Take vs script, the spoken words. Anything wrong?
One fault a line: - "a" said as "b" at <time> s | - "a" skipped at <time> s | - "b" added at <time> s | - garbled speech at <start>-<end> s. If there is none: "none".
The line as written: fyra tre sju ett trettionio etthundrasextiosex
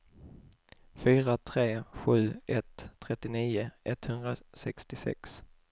none